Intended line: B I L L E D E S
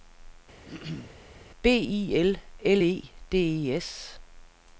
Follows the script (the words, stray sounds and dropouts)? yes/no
no